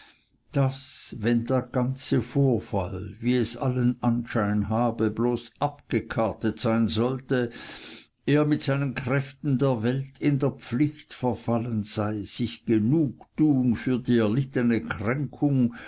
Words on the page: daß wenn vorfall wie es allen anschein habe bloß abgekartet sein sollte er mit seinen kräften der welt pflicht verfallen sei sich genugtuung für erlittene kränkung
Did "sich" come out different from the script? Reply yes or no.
no